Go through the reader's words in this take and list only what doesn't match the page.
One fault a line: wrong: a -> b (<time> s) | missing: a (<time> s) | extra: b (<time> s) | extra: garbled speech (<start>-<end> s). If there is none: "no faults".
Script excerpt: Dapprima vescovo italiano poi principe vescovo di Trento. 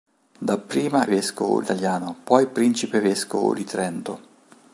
no faults